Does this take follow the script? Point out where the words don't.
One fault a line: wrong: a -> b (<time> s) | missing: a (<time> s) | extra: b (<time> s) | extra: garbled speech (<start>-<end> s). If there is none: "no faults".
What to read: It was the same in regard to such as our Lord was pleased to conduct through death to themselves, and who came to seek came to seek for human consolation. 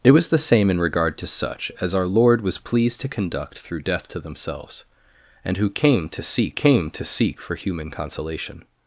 no faults